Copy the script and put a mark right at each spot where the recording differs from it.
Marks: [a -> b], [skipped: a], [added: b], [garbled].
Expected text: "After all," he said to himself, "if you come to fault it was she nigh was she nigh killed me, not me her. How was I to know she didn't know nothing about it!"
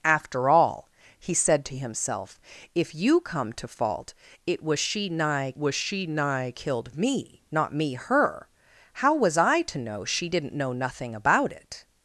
"After all," he said to himself, "if you come to fault it was she nigh was she nigh killed me, not me her. How was I to know she didn't know nothing about it!"